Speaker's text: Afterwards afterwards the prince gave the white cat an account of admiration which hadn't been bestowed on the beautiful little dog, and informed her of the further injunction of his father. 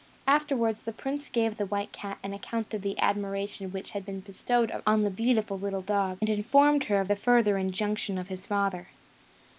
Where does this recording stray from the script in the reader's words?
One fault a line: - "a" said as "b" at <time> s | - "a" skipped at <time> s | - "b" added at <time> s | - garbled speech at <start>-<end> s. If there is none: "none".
- "afterwards" skipped at 0.8 s
- "the" added at 2.8 s
- "hadn't" said as "had" at 3.9 s